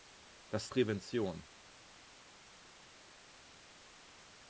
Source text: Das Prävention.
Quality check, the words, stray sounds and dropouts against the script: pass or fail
pass